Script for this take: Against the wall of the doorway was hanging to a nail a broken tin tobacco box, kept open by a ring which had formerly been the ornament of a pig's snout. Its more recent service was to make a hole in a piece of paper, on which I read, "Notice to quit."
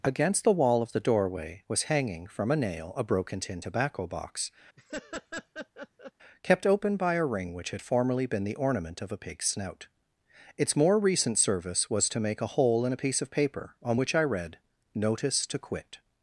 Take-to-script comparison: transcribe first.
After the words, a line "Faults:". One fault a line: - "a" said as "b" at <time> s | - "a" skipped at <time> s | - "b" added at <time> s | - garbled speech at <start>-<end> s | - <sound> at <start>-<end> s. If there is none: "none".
Against the wall of the doorway was hanging from a nail a broken tin tobacco box, kept open by a ring which had formerly been the ornament of a pig's snout. Its more recent service was to make a hole in a piece of paper, on which I read, "Notice to quit."
Faults:
- "to" said as "from" at 2.2 s
- laugh at 4.8-6.1 s